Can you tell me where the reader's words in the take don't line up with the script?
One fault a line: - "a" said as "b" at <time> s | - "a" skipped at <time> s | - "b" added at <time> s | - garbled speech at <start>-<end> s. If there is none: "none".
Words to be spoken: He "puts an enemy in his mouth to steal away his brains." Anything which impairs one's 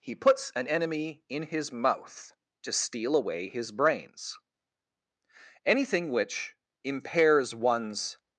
none